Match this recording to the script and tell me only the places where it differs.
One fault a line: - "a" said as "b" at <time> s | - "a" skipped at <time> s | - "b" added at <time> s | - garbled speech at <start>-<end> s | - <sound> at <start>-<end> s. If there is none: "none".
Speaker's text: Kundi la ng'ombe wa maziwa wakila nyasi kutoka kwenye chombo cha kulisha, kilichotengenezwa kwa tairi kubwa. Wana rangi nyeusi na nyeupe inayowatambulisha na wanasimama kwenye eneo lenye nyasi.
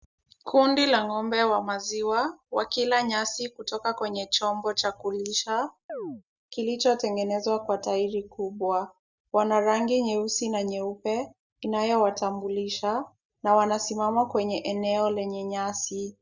- chirp at 5.9-6.2 s